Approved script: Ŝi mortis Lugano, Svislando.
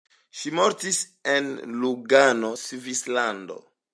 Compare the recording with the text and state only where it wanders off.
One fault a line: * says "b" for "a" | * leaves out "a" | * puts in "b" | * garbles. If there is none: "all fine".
* puts in "en"